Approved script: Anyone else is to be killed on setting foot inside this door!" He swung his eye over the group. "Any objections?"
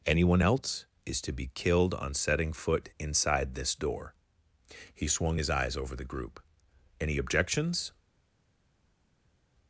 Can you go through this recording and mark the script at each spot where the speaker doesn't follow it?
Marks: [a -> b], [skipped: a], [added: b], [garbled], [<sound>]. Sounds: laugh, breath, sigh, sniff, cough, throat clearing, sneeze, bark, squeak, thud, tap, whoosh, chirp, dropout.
Anyone else is to be killed on setting foot inside this door!" He swung his [eye -> eyes] over the group. "Any objections?"